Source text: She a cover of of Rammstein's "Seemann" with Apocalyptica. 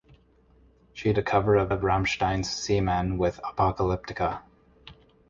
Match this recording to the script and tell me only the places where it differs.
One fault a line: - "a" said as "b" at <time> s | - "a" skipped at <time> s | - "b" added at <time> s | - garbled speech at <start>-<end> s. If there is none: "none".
none